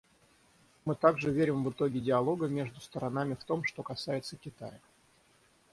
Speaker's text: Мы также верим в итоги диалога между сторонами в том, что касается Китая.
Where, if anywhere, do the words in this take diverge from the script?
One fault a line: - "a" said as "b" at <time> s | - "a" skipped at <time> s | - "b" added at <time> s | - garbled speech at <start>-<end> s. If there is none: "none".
none